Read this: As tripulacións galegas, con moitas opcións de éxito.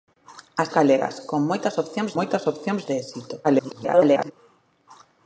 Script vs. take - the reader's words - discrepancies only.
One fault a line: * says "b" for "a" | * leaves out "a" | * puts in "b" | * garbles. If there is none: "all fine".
* leaves out "tripulacións"
* puts in "moitas opcións"
* garbles